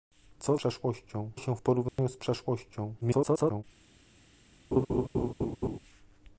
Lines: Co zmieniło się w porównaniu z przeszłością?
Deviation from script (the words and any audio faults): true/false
true